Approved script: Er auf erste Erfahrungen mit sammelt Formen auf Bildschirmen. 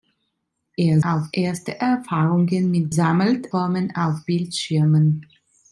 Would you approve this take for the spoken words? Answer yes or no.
yes